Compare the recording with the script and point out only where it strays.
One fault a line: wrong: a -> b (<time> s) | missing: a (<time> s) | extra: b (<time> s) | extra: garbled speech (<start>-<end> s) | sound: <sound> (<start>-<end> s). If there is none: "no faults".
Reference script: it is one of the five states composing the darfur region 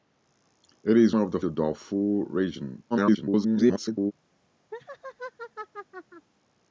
missing: one (1.1 s)
missing: five states composing (1.4 s)
extra: garbled speech (2.9-4.1 s)
sound: laugh (4.7-6.3 s)